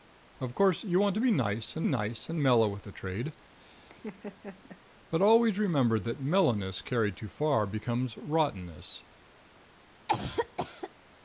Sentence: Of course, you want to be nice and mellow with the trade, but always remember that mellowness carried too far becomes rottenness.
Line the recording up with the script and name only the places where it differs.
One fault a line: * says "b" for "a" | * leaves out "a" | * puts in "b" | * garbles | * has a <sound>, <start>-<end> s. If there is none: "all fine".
* puts in "nice and"
* has a laugh, 3.6-4.8 s
* has a cough, 10.1-10.9 s